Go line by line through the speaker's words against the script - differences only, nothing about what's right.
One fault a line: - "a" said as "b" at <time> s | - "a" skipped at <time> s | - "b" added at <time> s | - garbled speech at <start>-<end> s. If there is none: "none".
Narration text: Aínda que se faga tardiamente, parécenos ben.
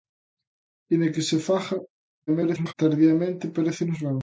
- garbled speech at 2.3-2.7 s